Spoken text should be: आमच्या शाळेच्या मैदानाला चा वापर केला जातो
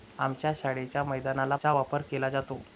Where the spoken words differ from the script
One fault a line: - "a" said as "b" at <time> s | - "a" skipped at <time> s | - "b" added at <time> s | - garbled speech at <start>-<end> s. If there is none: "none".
none